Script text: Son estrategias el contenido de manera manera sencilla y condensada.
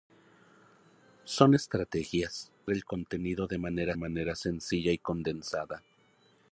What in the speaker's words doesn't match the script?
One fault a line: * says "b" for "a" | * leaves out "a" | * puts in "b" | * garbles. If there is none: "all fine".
all fine